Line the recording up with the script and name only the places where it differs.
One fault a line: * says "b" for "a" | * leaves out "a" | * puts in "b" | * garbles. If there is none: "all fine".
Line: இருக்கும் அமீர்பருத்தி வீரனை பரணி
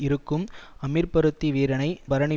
all fine